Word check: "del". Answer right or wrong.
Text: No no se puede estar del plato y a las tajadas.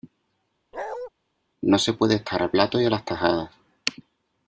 wrong